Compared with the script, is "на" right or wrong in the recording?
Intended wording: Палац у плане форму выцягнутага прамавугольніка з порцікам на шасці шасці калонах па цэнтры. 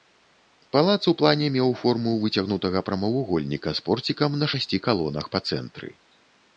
right